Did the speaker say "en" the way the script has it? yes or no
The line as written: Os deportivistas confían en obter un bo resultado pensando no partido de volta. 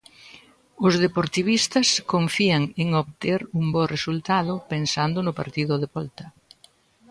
yes